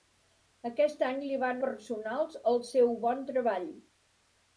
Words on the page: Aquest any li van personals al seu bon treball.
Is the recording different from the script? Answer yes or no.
no